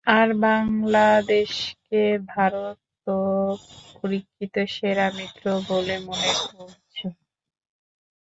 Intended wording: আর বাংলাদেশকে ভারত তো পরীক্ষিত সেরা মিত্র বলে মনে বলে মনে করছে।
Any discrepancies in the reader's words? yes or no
yes